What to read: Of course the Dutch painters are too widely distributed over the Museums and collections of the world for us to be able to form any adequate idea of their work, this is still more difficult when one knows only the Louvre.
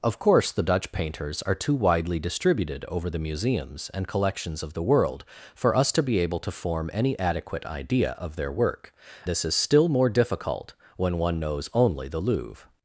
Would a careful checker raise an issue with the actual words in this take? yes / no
no